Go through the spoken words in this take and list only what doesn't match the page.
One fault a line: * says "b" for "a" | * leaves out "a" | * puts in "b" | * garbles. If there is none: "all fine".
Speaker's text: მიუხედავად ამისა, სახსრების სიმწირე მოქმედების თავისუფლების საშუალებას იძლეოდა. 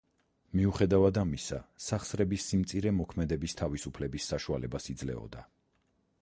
all fine